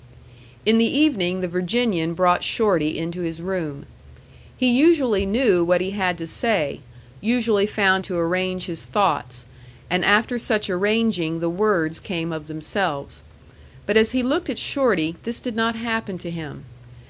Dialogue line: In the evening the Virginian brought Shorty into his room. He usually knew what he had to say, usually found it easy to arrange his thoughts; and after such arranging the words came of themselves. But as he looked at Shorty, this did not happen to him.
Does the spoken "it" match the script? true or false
false